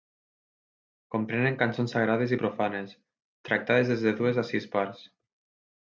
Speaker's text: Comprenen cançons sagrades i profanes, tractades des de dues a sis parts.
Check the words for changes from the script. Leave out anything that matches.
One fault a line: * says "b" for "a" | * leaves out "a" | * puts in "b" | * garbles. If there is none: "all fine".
all fine